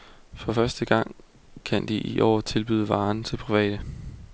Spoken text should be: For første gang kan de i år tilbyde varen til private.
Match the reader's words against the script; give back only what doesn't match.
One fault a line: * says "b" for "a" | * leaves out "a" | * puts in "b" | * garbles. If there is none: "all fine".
all fine